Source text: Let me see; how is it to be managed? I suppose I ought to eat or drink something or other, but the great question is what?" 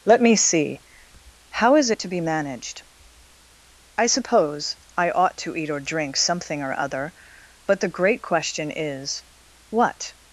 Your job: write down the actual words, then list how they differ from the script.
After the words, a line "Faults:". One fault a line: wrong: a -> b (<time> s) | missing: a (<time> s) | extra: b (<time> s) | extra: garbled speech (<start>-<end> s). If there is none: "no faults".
Let me see; how is it to be managed? I suppose I ought to eat or drink something or other, but the great question is what?"
Faults:
no faults